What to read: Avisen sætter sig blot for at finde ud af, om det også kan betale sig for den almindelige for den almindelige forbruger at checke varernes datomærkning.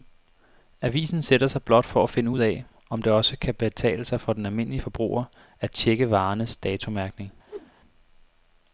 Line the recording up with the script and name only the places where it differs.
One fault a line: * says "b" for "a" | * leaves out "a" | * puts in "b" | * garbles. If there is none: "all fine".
* leaves out "for den almindelige"